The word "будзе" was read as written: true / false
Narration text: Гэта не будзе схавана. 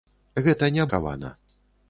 false